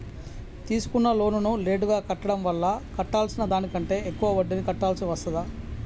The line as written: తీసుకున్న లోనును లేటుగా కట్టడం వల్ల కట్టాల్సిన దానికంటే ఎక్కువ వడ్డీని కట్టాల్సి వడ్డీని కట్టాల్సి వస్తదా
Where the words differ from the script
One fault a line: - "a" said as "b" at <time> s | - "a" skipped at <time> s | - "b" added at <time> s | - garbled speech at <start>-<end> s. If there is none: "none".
- "వడ్డీని కట్టాల్సి" skipped at 5.1 s